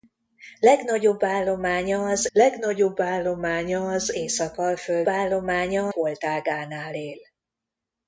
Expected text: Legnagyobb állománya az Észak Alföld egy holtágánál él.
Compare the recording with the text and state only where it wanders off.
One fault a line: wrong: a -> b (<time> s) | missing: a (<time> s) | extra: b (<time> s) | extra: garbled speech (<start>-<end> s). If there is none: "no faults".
extra: legnagyobb állománya az (2.3 s)
wrong: egy -> állománya (5.1 s)